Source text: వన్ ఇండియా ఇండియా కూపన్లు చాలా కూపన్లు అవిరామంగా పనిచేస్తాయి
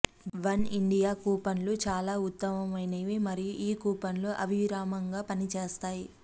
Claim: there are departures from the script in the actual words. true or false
true